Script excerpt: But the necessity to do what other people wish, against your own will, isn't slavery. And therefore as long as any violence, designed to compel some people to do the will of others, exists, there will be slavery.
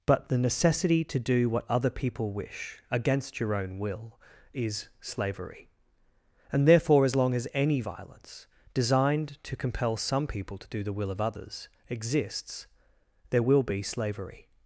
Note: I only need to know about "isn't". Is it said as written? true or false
false